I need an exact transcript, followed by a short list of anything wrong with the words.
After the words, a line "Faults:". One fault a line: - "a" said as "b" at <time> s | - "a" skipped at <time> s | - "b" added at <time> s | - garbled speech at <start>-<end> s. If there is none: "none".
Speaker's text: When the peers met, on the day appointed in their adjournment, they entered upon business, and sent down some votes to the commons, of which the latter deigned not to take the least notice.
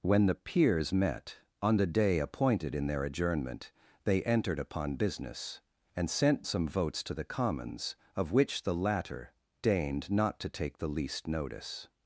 When the peers met, on the day appointed in their adjournment, they entered upon business, and sent some votes to the commons, of which the latter deigned not to take the least notice.
Faults:
- "down" skipped at 6.4 s